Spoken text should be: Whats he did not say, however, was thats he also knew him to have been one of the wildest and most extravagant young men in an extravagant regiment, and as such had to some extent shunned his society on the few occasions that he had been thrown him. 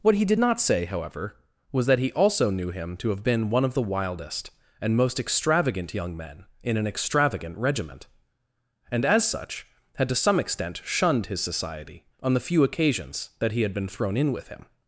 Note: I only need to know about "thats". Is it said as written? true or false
false